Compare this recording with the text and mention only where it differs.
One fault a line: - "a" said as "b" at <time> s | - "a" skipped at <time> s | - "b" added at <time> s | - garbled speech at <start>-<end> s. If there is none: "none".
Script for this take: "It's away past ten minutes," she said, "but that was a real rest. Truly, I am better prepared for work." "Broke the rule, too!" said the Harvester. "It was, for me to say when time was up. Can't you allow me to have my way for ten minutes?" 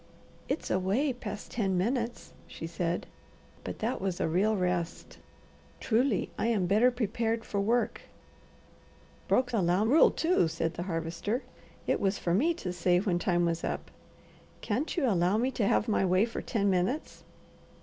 - "the" said as "allow" at 9.5 s